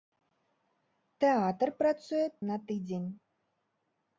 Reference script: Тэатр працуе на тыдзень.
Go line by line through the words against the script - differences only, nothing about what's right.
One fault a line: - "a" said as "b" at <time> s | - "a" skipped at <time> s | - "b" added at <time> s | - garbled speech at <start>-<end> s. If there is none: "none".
none